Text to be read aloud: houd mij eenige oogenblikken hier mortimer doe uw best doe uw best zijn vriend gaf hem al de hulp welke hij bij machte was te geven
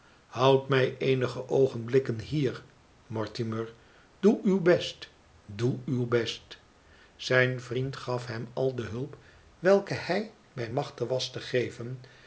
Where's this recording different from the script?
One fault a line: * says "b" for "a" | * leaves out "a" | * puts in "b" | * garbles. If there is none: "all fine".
all fine